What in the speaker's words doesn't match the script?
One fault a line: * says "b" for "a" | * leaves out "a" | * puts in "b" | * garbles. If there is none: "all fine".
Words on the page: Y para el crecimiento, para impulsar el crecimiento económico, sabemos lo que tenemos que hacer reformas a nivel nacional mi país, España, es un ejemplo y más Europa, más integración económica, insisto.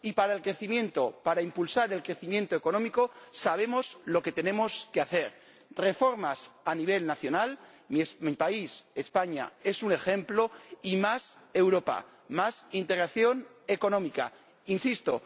all fine